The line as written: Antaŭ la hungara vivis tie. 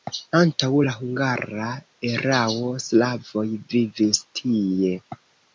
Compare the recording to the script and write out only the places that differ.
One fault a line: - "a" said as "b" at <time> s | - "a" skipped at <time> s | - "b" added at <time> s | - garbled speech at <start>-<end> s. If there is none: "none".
- "erao slavoj" added at 2.1 s